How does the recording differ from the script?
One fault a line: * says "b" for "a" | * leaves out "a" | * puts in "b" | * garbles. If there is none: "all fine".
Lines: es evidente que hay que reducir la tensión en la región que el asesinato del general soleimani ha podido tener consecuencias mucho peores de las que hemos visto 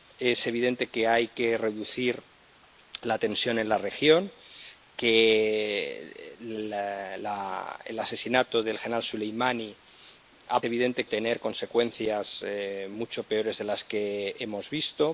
* says "evidente" for "podido"